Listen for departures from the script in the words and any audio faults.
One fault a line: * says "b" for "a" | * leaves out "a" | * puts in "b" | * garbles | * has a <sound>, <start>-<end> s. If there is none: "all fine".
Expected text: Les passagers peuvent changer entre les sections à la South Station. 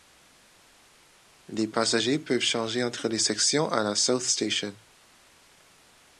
all fine